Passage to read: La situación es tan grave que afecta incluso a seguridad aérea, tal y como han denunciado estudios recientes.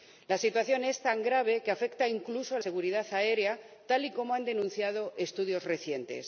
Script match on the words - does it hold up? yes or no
yes